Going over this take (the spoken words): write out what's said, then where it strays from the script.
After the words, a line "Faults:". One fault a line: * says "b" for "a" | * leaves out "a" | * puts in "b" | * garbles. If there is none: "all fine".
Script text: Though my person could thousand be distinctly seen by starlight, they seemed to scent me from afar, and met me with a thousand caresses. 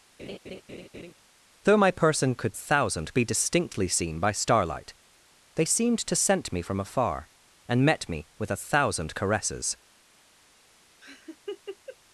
Though my person could thousand be distinctly seen by starlight, they seemed to scent me from afar, and met me with a thousand caresses.
Faults:
all fine